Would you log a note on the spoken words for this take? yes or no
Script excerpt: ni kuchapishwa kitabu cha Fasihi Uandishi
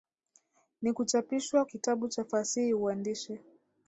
no